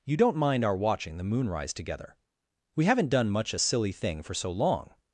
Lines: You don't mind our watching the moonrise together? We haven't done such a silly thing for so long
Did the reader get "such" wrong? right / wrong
wrong